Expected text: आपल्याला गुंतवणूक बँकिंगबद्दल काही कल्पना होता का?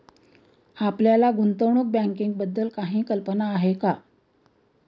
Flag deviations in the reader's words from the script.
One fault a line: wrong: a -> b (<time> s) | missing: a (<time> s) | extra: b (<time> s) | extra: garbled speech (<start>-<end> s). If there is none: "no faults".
wrong: होता -> आहे (3.5 s)